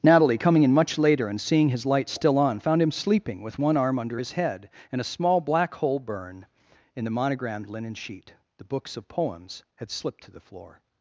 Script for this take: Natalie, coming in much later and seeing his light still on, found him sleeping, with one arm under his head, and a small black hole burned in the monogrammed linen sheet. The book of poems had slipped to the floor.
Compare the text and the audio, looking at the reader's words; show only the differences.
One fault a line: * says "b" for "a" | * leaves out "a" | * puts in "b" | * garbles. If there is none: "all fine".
* says "burn" for "burned"
* says "books" for "book"